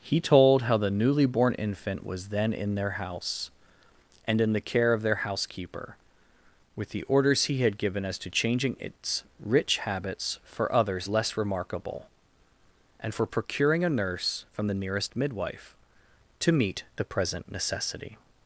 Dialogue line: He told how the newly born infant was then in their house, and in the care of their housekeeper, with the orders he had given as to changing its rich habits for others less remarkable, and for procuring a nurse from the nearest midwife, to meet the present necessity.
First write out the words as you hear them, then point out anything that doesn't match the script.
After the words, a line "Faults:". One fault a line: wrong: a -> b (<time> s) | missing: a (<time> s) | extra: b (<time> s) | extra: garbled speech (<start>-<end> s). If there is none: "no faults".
He told how the newly born infant was then in their house, and in the care of their housekeeper, with the orders he had given as to changing its rich habits for others less remarkable, and for procuring a nurse from the nearest midwife, to meet the present necessity.
Faults:
no faults